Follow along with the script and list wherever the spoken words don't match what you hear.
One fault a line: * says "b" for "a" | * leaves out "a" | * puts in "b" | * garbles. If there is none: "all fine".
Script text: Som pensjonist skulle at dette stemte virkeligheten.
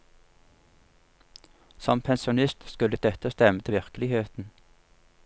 all fine